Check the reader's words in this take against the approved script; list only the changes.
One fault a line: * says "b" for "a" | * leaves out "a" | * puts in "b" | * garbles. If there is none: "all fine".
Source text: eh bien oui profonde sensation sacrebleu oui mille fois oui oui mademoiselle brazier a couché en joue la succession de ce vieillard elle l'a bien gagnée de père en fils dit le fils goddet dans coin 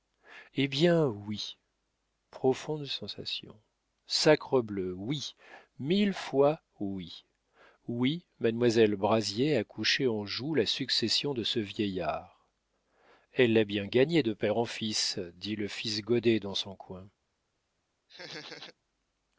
* puts in "son"